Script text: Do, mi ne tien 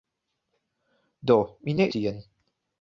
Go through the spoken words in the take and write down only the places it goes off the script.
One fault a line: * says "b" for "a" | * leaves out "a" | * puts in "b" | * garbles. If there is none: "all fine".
all fine